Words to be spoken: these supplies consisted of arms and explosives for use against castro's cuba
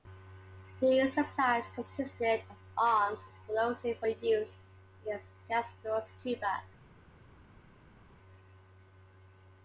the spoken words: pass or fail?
pass